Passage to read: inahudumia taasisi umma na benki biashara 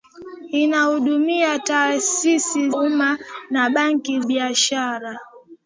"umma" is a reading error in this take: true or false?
false